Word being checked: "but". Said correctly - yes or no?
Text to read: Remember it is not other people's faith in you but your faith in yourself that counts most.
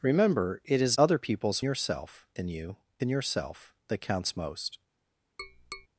no